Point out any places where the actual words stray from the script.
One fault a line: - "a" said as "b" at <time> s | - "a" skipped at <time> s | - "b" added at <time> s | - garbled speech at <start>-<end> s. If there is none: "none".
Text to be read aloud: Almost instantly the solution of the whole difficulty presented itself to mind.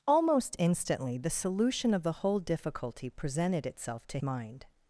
none